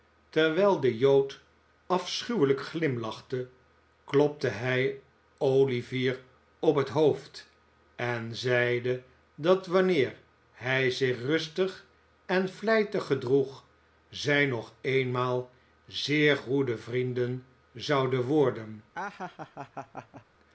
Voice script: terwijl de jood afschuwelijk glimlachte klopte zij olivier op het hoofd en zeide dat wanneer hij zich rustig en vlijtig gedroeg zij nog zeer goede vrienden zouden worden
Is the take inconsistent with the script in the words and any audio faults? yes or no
yes